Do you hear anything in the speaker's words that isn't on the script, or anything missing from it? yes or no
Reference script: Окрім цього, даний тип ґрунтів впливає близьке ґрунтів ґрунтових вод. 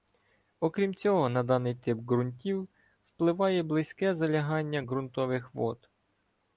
yes